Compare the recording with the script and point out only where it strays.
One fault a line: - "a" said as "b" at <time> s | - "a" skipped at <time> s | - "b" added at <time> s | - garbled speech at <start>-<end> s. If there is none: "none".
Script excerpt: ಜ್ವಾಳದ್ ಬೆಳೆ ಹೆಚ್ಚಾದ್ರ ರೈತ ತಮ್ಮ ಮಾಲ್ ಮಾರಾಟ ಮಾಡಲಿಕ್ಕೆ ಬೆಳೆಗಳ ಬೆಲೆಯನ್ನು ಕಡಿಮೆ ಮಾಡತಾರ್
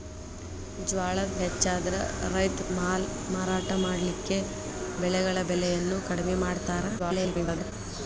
- "ಬೆಳೆ" skipped at 1.4 s
- "ತಮ್ಮ" skipped at 2.7 s
- garbled speech at 7.0-7.7 s